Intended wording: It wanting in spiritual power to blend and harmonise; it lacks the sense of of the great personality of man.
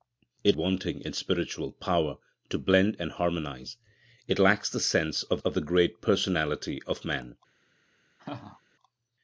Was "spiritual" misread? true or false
false